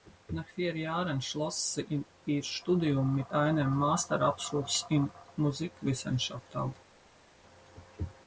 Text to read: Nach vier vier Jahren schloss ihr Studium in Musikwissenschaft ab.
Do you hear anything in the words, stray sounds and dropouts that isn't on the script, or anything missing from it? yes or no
yes